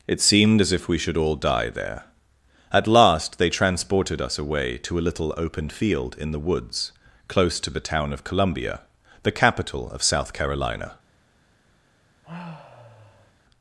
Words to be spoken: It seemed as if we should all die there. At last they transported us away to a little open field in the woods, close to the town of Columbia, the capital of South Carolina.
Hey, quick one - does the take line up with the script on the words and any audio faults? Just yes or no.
no